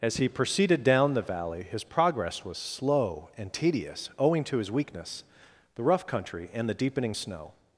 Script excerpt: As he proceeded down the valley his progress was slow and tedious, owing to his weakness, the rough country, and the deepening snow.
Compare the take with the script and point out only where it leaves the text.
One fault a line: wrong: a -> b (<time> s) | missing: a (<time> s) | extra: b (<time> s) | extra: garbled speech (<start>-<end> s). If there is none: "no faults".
no faults